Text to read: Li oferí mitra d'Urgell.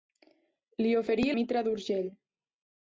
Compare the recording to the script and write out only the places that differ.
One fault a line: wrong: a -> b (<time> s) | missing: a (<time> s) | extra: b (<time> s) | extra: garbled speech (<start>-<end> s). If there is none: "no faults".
no faults